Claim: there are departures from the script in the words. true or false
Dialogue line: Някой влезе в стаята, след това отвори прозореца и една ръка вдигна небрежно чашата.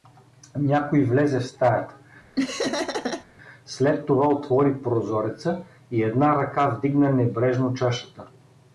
false